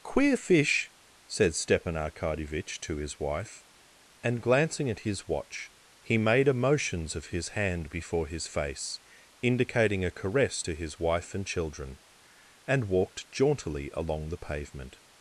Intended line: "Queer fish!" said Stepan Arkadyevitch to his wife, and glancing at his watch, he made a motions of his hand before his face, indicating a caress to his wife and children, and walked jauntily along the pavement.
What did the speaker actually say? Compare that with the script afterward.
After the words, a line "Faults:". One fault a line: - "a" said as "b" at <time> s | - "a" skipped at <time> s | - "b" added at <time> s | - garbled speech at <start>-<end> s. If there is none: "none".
"Queer fish!" said Stepan Arkadyevitch to his wife, and glancing at his watch, he made a motions of his hand before his face, indicating a caress to his wife and children, and walked jauntily along the pavement.
Faults:
none